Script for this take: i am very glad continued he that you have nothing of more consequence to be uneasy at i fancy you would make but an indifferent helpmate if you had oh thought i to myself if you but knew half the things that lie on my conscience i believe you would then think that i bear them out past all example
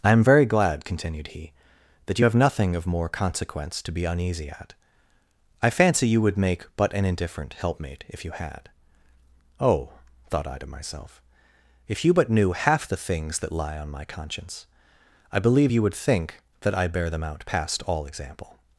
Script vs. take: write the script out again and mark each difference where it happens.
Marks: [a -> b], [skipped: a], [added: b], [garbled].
i am very glad continued he that you have nothing of more consequence to be uneasy at i fancy you would make but an indifferent helpmate if you had oh thought i to myself if you but knew half the things that lie on my conscience i believe you would [skipped: then] think that i bear them out past all example